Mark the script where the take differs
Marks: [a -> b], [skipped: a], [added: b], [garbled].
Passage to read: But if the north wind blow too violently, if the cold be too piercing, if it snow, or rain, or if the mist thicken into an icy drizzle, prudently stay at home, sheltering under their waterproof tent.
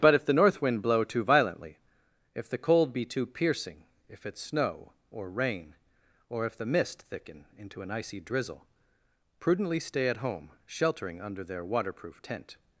But if the north wind blow too violently, if the cold be too piercing, if it snow, or rain, or if the mist thicken into an icy drizzle, prudently stay at home, sheltering under their waterproof tent.